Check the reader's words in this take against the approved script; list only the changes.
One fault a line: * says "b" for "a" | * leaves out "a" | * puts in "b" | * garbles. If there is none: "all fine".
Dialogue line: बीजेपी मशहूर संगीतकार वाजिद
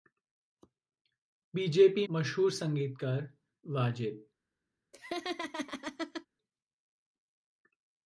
all fine